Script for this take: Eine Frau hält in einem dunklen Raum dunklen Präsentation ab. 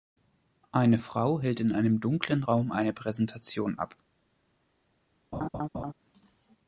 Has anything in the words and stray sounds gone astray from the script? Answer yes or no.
yes